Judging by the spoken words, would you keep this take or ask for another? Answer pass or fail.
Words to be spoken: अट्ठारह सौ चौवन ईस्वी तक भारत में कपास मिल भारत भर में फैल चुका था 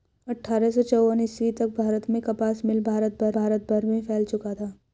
fail